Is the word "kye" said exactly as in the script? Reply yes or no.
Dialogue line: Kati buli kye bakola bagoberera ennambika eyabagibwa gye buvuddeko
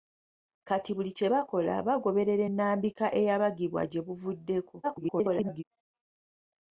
yes